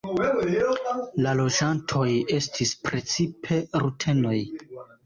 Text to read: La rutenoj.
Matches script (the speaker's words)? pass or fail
fail